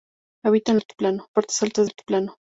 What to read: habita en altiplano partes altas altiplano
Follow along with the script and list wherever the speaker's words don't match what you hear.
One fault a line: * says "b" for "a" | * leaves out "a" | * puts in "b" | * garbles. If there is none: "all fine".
all fine